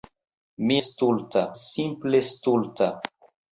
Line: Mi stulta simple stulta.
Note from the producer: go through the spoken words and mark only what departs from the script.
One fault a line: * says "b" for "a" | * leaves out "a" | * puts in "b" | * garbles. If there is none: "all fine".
all fine